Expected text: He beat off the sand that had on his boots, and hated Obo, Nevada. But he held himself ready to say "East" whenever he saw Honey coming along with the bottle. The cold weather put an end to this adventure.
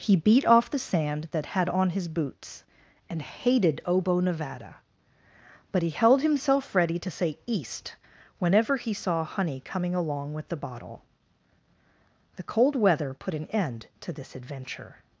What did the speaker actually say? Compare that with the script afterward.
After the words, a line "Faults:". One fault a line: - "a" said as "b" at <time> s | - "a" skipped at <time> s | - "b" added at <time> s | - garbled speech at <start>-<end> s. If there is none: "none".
He beat off the sand that had on his boots, and hated Obo, Nevada. But he held himself ready to say "East" whenever he saw Honey coming along with the bottle. The cold weather put an end to this adventure.
Faults:
none